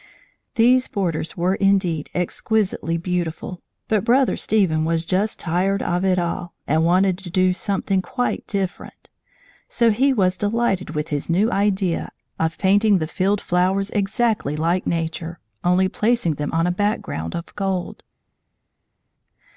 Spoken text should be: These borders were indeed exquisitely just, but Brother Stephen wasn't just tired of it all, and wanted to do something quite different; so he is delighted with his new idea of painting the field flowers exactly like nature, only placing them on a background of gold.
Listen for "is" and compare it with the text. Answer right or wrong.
wrong